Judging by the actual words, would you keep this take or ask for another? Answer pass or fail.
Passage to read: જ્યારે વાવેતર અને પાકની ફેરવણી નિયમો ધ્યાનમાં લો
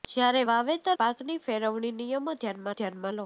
fail